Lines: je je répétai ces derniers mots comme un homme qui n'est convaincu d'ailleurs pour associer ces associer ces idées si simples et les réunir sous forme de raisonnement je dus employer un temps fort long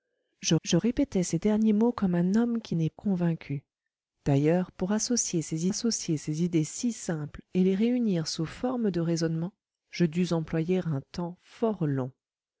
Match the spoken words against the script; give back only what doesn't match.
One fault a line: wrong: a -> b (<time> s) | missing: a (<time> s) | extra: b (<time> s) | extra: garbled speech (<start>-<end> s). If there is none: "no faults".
no faults